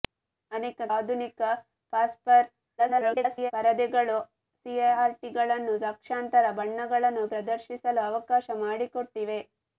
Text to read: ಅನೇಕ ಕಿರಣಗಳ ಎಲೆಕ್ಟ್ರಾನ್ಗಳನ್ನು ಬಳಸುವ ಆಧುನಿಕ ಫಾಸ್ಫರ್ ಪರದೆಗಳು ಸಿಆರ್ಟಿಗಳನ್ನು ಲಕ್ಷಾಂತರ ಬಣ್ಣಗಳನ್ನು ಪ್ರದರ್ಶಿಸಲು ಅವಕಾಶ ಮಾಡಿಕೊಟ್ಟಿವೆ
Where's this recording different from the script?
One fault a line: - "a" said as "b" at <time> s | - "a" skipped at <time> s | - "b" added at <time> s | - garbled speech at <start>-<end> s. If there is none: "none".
- "ಕಿರಣಗಳ ಎಲೆಕ್ಟ್ರಾನ್ಗಳನ್ನು ಬಳಸುವ" skipped at 0.8 s
- garbled speech at 2.8-3.5 s